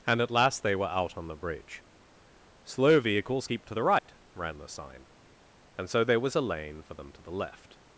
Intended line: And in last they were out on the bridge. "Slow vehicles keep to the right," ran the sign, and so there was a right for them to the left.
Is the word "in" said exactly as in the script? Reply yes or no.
no